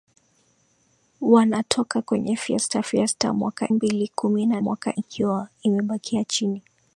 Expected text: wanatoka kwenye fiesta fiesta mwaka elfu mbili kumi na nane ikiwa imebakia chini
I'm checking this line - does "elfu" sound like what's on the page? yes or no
no